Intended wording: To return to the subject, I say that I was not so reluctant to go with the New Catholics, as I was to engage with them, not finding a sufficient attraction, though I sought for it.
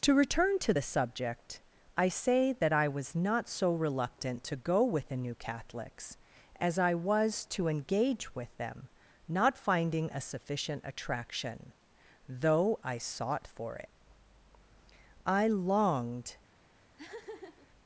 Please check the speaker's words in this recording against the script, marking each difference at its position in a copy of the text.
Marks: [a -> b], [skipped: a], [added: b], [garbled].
To return to the subject, I say that I was not so reluctant to go with the New Catholics, as I was to engage with them, not finding a sufficient attraction, though I sought for it. [added: I longed]